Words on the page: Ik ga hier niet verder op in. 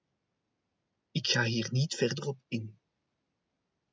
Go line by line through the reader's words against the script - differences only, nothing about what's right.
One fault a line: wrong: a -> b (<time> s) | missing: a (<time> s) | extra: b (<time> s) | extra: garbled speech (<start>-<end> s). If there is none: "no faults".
no faults